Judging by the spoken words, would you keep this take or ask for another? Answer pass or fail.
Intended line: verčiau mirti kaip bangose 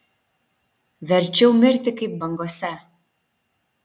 pass